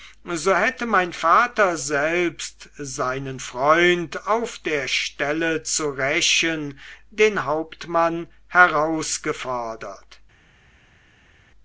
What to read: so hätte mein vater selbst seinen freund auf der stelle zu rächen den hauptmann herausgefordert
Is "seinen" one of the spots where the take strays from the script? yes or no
no